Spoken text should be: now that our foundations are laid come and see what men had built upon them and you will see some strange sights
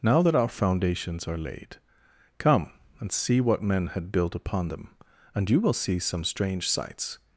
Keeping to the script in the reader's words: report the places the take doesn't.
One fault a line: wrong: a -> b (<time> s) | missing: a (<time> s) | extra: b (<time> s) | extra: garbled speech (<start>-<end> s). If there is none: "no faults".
no faults